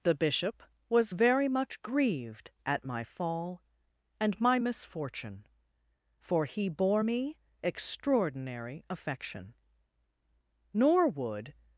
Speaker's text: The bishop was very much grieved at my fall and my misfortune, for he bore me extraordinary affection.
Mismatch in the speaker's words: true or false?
true